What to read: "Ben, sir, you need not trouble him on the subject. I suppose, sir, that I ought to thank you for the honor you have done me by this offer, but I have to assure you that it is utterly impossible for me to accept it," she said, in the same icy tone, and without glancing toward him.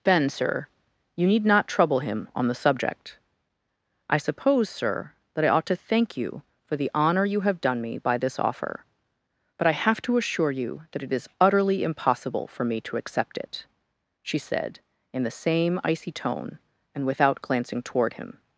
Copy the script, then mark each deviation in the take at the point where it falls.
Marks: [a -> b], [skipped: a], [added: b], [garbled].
"Ben, sir, you need not trouble him on the subject. I suppose, sir, that I ought to thank you for the honor you have done me by this offer, but I have to assure you that it is utterly impossible for me to accept it," she said, in the same icy tone, and without glancing toward him.